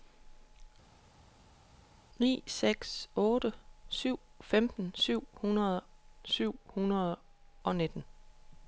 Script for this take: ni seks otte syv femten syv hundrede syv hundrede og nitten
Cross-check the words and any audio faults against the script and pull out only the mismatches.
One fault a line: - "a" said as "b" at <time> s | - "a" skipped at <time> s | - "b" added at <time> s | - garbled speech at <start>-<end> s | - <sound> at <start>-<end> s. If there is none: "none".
none